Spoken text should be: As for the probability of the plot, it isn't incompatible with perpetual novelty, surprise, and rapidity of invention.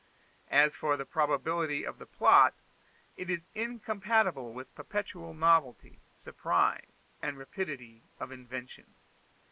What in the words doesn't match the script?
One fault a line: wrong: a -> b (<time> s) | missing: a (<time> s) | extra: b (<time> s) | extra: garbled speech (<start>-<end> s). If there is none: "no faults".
wrong: isn't -> is (3.3 s)